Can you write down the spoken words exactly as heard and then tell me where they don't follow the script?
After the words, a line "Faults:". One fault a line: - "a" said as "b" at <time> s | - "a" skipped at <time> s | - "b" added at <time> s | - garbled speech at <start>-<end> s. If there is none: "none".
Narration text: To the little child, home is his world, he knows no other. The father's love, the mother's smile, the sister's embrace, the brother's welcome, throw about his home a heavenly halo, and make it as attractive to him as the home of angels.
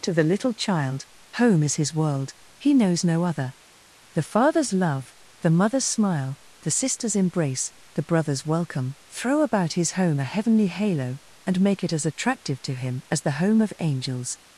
To the little child, home is his world, he knows no other. The father's love, the mother's smile, the sister's embrace, the brother's welcome, throw about his home a heavenly halo, and make it as attractive to him as the home of angels.
Faults:
none